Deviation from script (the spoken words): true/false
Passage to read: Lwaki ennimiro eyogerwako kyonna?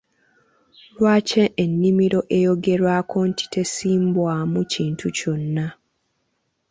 true